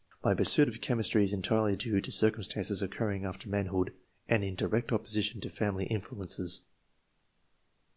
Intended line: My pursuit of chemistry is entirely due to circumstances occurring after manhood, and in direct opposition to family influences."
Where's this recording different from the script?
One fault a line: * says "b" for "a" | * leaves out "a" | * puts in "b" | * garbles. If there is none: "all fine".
all fine